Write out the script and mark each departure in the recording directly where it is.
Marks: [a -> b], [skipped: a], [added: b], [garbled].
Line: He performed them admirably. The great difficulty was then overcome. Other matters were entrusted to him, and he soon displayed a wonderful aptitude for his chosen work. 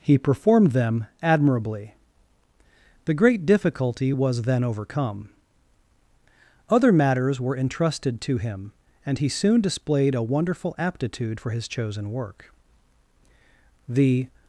He performed them admirably. The great difficulty was then overcome. Other matters were entrusted to him, and he soon displayed a wonderful aptitude for his chosen work. [added: The]